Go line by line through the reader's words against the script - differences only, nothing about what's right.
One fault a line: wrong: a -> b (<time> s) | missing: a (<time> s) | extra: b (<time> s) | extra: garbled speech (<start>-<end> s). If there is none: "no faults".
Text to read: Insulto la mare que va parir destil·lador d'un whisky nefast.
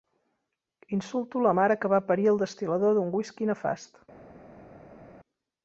extra: el (2.3 s)